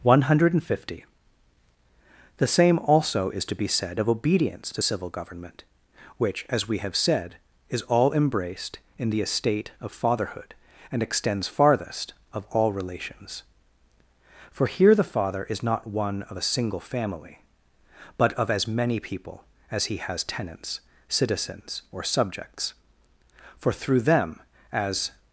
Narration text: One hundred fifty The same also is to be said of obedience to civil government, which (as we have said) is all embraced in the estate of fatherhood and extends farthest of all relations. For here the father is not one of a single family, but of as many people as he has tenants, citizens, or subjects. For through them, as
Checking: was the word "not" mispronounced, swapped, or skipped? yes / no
no